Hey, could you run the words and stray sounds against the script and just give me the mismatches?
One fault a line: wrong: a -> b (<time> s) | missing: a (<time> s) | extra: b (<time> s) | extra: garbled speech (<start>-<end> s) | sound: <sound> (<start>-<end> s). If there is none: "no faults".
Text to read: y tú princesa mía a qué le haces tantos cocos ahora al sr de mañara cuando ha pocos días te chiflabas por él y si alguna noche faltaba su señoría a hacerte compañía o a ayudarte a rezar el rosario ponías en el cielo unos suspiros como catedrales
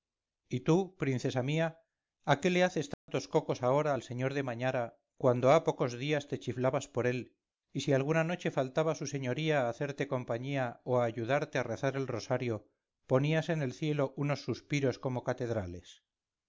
sound: dropout (2.9-3.1 s)